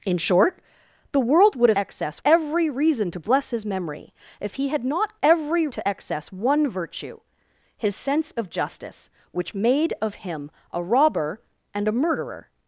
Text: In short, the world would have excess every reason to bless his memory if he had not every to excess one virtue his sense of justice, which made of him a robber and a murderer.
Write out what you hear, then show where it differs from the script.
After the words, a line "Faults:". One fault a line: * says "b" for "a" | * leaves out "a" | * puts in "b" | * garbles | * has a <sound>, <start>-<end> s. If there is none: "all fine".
In short, the world would have excess every reason to bless his memory if he had not every to excess one virtue his sense of justice, which made of him a robber and a murderer.
Faults:
all fine